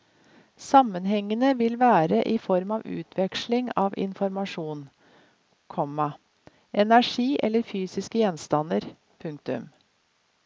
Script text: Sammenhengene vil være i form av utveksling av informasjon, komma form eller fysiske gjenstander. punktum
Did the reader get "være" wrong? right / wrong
right